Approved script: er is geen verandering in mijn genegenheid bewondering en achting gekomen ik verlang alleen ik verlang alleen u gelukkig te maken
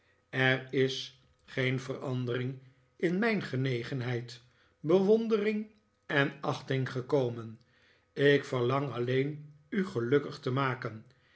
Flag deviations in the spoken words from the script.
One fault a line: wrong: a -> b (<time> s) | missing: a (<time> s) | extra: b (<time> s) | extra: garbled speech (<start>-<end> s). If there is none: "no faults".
missing: ik verlang alleen (9.5 s)